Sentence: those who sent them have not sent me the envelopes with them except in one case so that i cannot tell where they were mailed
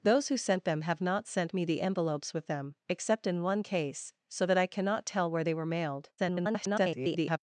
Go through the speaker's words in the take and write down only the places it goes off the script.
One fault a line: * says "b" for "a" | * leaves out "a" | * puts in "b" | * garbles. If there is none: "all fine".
* garbles